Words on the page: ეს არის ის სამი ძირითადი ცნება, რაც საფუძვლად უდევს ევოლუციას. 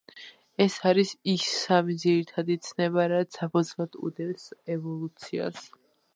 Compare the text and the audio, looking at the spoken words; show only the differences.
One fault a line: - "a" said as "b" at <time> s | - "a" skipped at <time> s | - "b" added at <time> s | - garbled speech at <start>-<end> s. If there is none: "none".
none